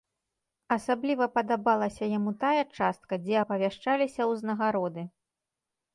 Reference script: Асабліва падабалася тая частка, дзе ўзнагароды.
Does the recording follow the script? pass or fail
fail